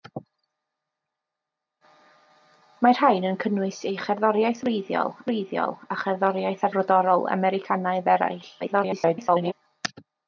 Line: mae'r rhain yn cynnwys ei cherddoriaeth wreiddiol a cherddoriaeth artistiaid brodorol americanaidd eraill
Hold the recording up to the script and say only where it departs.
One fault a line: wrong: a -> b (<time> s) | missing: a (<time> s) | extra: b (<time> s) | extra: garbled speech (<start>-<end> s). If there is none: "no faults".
extra: wreiddiol (5.3 s)
missing: artistiaid (6.7 s)
extra: garbled speech (8.6-9.5 s)